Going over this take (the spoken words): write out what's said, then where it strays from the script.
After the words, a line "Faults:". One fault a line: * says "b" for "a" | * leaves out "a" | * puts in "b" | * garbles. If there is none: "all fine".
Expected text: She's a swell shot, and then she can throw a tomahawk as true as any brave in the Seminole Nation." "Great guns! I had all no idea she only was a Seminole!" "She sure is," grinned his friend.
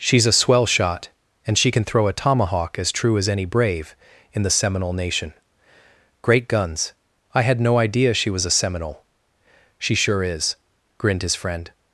She's a swell shot, and she can throw a tomahawk as true as any brave in the Seminole Nation." "Great guns! I had no idea she was a Seminole!" "She sure is," grinned his friend.
Faults:
* leaves out "then"
* leaves out "all"
* leaves out "only"